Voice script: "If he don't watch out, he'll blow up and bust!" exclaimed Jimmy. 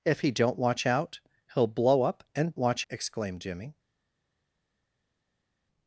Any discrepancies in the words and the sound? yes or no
yes